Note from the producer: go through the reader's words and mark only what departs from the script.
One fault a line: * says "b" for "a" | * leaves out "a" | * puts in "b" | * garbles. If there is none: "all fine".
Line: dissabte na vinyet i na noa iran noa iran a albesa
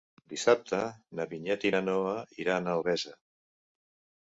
* leaves out "noa iran"